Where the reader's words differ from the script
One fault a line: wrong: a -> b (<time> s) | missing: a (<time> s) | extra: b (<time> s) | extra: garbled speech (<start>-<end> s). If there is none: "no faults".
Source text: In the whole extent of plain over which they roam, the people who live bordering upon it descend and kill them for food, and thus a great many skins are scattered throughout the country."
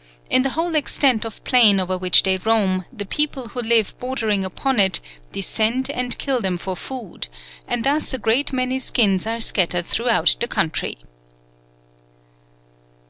no faults